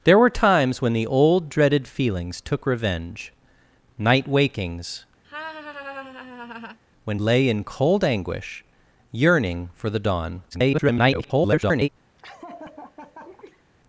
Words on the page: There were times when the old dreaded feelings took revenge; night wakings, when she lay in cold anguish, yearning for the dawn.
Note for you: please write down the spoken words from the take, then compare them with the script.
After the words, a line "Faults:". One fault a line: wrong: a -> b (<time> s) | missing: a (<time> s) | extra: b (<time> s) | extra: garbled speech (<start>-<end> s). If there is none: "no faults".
There were times when the old dreaded feelings took revenge; night wakings, when lay in cold anguish, yearning for the dawn. [garbled]
Faults:
missing: she (7.2 s)
extra: garbled speech (10.5-11.9 s)